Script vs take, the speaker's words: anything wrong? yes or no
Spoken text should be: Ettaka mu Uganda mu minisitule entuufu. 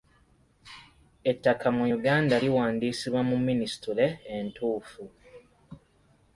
yes